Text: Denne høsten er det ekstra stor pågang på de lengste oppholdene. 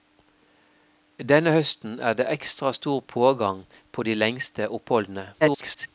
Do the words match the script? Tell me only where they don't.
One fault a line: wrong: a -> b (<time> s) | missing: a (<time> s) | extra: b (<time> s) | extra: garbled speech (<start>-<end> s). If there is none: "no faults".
extra: garbled speech (5.4-5.9 s)